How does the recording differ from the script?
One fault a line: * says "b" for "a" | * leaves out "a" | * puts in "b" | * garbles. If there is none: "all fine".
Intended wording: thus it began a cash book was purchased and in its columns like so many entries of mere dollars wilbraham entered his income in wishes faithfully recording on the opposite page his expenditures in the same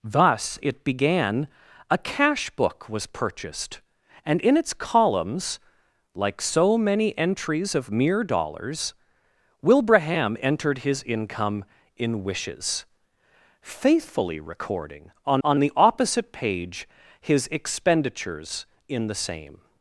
* puts in "on"